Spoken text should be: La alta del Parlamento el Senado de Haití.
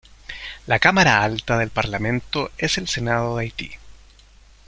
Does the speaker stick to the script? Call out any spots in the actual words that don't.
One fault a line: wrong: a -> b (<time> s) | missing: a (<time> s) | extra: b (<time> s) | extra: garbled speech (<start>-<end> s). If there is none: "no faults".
extra: cámara (0.8 s)
extra: es (2.6 s)